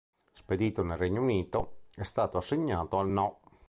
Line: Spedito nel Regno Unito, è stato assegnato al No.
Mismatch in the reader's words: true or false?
false